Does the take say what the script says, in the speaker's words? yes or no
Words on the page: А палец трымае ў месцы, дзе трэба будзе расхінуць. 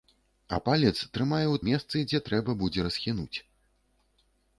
yes